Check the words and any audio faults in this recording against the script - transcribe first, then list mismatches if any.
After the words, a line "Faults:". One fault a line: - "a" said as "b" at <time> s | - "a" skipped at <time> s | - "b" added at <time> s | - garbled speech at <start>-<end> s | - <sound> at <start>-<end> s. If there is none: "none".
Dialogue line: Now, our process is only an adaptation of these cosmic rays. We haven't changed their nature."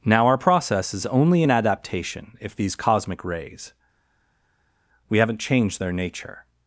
Now, our process is only an adaptation if these cosmic rays. We haven't changed their nature."
Faults:
- "of" said as "if" at 2.4 s